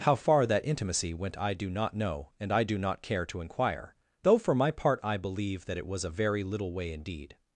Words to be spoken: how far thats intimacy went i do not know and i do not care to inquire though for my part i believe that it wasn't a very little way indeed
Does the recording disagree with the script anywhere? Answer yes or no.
yes